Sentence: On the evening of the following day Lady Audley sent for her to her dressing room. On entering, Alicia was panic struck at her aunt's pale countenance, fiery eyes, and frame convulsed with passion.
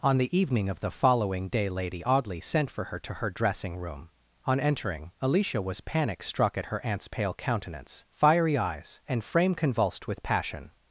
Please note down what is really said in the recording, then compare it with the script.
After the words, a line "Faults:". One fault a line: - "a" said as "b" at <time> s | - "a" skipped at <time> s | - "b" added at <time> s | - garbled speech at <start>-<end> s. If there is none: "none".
On the evening of the following day Lady Audley sent for her to her dressing room. On entering, Alicia was panic struck at her aunt's pale countenance, fiery eyes, and frame convulsed with passion.
Faults:
none